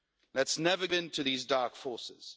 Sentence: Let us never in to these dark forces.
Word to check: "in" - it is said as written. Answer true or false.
true